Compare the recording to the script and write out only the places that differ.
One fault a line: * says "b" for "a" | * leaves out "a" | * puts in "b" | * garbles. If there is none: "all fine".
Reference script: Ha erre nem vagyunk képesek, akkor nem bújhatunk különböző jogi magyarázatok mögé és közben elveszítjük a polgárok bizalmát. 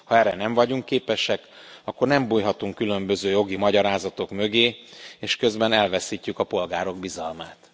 all fine